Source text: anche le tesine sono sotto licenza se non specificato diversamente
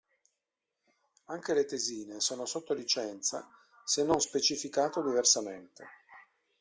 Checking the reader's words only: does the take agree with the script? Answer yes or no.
yes